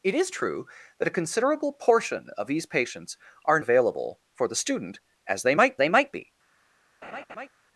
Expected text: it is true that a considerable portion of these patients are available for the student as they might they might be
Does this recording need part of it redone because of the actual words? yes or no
no